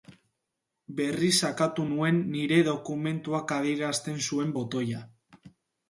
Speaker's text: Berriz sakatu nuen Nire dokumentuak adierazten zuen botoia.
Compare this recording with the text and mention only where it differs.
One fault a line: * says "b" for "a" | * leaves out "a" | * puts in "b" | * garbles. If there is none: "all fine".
all fine